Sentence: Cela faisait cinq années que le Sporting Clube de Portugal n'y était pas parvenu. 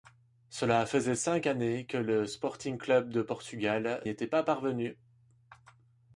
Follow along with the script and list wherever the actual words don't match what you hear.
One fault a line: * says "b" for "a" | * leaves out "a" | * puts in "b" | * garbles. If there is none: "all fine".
* leaves out "n'y"